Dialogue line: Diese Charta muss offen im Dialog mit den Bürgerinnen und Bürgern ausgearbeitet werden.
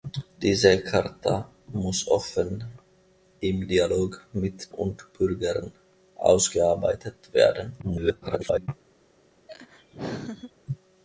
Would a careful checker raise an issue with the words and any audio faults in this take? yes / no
yes